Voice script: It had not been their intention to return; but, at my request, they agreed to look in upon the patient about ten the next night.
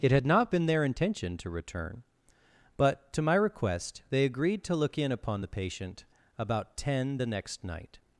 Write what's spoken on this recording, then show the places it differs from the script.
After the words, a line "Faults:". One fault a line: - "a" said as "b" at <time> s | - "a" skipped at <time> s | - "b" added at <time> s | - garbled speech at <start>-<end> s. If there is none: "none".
It had not been their intention to return; but, to my request, they agreed to look in upon the patient about ten the next night.
Faults:
- "at" said as "to" at 3.1 s